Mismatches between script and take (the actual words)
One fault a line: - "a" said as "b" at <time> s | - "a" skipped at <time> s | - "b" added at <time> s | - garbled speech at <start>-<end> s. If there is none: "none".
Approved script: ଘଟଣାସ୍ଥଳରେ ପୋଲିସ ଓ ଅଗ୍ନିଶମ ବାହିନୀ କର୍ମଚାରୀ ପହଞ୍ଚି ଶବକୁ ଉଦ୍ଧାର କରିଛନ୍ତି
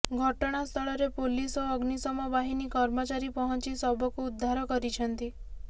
none